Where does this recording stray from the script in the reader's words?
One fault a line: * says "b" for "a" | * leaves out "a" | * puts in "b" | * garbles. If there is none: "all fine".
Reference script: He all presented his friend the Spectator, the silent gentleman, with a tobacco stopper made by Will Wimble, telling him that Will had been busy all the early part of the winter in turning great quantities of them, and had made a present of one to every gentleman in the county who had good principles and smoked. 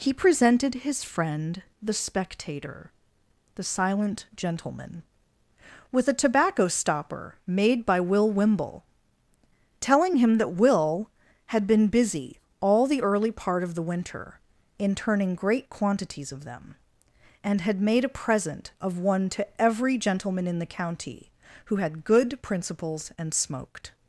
* leaves out "all"